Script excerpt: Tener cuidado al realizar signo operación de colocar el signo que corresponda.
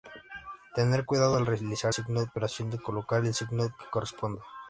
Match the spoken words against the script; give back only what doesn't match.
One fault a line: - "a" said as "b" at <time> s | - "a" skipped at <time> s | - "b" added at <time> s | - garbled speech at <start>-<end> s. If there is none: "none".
none